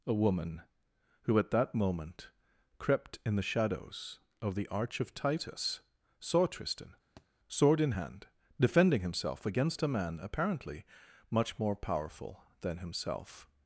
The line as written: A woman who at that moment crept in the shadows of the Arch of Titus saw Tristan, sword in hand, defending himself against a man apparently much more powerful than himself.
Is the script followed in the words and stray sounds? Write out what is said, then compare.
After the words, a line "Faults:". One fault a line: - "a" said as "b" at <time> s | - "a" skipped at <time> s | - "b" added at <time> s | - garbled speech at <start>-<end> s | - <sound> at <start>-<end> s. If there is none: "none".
A woman who at that moment crept in the shadows of the Arch of Titus saw Tristan, sword in hand, defending himself against a man apparently much more powerful than himself.
Faults:
- thud at 7.2-7.3 s